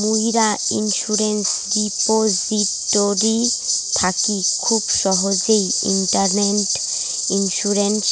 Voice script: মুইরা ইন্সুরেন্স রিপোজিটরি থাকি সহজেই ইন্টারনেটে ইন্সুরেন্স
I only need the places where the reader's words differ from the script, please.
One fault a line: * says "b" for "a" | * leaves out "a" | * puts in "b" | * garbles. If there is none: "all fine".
* puts in "খুব"